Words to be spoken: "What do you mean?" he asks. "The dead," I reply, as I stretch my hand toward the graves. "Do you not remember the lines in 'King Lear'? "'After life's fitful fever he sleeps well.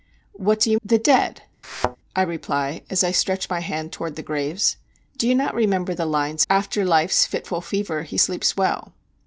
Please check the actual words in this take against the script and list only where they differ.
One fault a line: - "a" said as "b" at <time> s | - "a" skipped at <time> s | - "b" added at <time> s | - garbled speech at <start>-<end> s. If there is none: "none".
- "mean he asks" skipped at 0.8 s
- "in King Lear" skipped at 6.4 s